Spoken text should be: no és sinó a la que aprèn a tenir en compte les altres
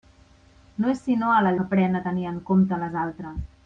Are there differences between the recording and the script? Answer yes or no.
no